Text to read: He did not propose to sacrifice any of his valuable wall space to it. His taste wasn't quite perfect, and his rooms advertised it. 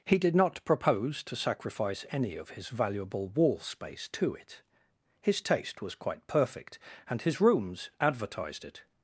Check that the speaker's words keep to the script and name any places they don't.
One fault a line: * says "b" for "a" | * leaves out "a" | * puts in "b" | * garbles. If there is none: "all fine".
* says "was" for "wasn't"